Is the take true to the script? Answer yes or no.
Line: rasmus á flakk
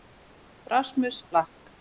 yes